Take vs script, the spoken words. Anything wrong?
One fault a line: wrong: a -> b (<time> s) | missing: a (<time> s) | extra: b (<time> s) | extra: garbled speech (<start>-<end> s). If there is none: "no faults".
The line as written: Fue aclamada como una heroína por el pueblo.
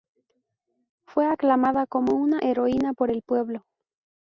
no faults